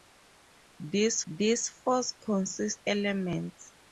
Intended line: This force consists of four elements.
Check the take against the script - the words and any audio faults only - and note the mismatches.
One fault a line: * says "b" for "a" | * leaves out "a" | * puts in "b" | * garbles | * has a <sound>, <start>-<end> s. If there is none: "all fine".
* puts in "this"
* leaves out "of four"